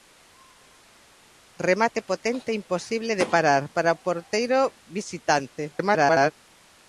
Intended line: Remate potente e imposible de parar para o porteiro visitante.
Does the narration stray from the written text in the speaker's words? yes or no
yes